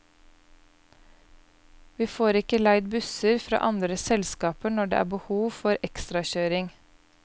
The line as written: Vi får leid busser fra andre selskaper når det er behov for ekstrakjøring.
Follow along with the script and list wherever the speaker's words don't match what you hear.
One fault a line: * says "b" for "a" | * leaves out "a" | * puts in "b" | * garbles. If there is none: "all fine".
* puts in "ikke"